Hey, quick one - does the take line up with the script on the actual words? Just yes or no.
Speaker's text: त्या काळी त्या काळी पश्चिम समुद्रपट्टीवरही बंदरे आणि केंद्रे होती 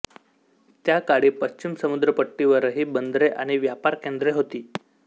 no